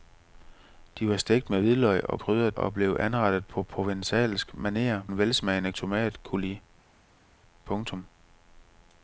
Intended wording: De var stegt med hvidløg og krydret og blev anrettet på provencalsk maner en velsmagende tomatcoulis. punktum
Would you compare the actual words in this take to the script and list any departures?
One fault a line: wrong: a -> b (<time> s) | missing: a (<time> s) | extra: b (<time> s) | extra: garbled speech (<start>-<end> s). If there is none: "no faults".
no faults